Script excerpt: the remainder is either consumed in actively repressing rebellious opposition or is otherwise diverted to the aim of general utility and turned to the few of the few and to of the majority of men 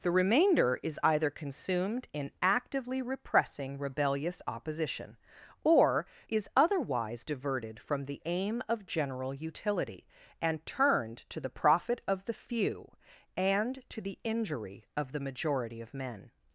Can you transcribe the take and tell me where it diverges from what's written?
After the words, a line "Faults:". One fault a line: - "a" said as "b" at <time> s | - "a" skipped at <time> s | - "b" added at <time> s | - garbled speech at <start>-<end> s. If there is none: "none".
the remainder is either consumed in actively repressing rebellious opposition or is otherwise diverted from the aim of general utility and turned to the profit of the few and to the injury of the majority of men
Faults:
- "to" said as "from" at 7.8 s
- "few" said as "profit" at 11.5 s
- "the injury" added at 14.0 s